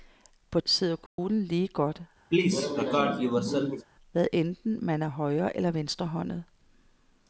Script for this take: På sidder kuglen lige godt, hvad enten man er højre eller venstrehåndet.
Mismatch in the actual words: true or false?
false